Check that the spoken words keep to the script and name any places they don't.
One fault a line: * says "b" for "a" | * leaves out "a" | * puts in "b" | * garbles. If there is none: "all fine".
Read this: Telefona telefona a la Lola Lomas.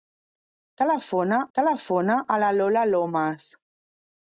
all fine